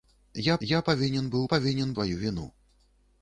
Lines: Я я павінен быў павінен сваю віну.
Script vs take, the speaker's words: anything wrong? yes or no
no